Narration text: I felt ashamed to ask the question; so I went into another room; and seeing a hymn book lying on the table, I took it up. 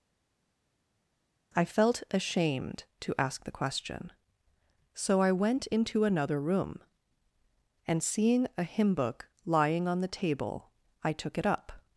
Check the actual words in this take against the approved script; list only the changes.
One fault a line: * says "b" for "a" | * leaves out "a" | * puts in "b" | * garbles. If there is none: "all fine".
all fine